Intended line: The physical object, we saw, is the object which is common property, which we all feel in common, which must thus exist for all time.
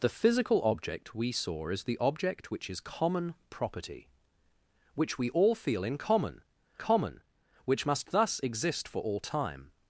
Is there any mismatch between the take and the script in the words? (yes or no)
yes